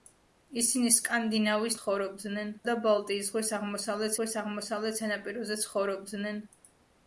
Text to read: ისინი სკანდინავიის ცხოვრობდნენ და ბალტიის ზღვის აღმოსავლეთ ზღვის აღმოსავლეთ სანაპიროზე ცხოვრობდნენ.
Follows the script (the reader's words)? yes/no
yes